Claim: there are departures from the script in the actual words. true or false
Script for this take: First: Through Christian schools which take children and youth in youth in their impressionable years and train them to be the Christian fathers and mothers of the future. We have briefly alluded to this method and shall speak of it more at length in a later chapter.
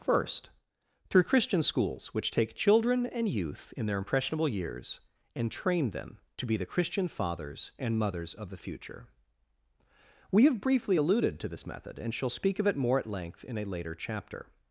true